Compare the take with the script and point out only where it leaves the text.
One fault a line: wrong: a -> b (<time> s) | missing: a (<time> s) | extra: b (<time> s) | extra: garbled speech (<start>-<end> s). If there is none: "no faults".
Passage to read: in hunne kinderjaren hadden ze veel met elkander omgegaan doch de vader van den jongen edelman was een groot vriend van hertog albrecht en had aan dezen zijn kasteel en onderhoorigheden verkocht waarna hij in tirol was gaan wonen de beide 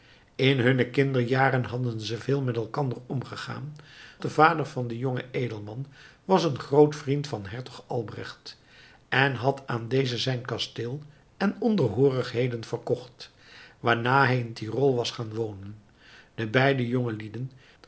missing: doch (3.8 s)